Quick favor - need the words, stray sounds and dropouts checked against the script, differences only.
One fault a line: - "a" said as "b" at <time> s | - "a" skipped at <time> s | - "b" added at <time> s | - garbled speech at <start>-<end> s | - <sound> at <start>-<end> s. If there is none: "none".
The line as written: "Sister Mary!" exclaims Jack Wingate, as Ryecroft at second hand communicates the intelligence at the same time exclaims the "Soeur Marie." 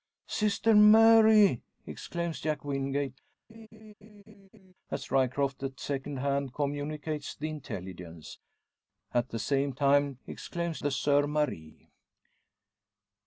- laugh at 3.5-4.7 s